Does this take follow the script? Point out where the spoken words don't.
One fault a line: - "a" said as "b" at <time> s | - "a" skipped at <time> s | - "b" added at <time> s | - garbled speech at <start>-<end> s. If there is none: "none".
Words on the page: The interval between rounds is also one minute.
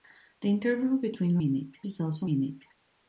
- "rounds" said as "minute" at 1.4 s
- "one" skipped at 2.3 s